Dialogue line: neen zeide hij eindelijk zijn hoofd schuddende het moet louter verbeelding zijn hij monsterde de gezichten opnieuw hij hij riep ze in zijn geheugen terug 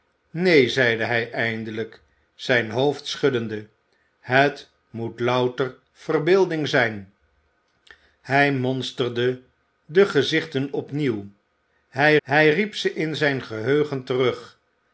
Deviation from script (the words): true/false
false